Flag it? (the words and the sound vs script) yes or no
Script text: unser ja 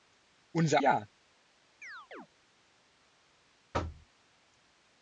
yes